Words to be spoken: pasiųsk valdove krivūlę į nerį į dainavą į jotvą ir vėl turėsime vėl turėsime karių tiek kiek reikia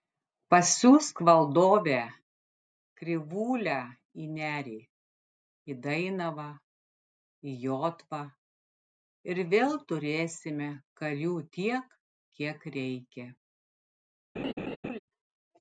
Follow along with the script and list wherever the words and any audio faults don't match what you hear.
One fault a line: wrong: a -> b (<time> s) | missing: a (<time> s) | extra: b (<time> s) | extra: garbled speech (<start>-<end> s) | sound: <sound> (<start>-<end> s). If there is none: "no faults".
missing: vėl turėsime (10.7 s)
sound: laugh (14.4-15.0 s)